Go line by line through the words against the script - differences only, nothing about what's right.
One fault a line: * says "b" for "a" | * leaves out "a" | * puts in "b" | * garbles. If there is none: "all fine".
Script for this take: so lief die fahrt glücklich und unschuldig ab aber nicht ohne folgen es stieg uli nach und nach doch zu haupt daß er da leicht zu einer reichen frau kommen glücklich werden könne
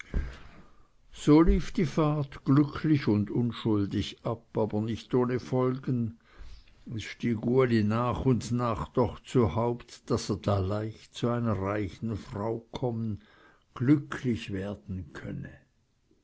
all fine